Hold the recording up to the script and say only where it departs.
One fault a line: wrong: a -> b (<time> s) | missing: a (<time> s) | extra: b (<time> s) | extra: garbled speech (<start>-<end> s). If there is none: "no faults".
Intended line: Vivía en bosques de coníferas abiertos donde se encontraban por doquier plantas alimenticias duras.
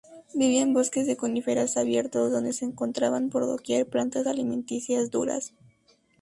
no faults